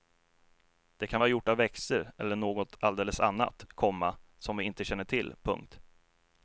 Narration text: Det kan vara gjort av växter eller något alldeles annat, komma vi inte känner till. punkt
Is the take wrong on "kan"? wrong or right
right